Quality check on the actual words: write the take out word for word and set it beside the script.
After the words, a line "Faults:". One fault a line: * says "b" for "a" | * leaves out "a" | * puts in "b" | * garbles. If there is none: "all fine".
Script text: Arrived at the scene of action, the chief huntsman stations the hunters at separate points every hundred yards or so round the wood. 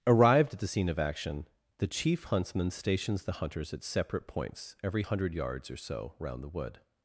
Arrived at the scene of action, the chief huntsman stations the hunters at separate points every hundred yards or so round the wood.
Faults:
all fine